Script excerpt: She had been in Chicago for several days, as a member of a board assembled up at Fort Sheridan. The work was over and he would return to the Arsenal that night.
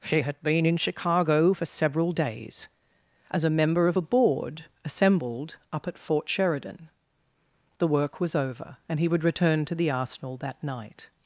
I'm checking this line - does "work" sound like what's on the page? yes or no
yes